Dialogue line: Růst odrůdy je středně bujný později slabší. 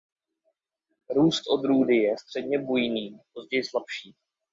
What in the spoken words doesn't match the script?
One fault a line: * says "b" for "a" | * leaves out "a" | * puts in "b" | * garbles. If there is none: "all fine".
all fine